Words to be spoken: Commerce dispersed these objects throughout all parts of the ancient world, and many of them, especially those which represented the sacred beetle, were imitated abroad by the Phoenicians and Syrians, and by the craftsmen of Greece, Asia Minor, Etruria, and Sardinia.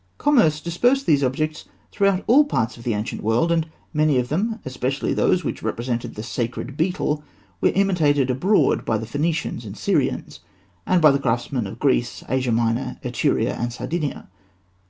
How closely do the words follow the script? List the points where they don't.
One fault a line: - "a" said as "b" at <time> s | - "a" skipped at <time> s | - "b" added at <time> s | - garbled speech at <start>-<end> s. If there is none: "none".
none